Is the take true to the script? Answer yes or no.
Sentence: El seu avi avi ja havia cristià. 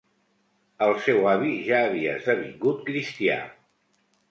no